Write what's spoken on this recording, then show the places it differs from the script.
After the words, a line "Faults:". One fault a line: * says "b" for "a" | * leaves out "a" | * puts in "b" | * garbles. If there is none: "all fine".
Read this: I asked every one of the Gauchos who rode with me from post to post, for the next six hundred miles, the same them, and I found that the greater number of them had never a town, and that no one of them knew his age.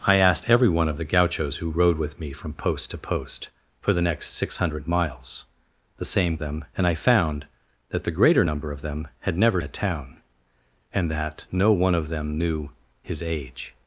I asked every one of the Gauchos who rode with me from post to post, for the next six hundred miles, the same them, and I found that the greater number of them had never a town, and that no one of them knew his age.
Faults:
all fine